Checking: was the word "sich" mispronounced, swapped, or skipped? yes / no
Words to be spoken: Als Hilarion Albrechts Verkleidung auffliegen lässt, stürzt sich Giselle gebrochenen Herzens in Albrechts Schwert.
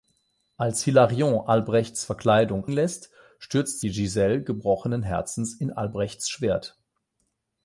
yes